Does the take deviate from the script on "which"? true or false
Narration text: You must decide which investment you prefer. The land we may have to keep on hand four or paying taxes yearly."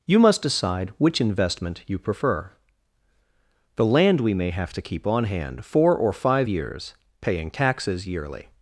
false